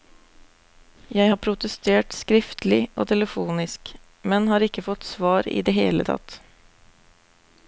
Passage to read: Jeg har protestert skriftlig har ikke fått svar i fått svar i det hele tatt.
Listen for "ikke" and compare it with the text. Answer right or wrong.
wrong